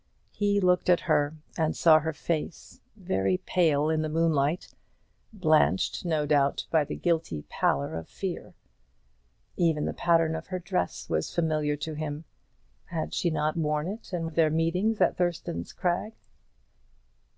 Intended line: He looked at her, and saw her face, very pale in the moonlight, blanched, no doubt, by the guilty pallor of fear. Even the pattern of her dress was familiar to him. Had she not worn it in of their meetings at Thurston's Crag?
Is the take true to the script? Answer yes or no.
yes